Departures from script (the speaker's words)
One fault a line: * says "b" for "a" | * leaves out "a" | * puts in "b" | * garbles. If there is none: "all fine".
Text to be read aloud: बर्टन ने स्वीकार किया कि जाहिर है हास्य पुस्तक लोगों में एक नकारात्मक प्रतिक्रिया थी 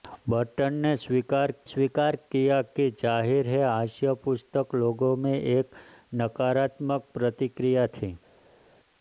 * puts in "स्वीकार"